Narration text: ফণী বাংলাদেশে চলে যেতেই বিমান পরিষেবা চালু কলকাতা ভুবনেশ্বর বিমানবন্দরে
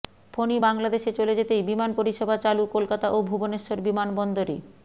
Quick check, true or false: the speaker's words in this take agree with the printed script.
false